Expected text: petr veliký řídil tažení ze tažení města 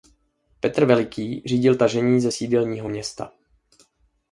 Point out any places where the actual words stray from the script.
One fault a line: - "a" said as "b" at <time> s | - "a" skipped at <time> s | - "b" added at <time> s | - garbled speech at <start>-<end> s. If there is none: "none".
- "tažení" said as "sídelního" at 2.3 s